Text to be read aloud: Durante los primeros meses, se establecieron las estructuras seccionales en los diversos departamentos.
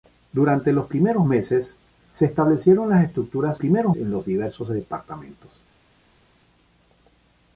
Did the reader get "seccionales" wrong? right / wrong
wrong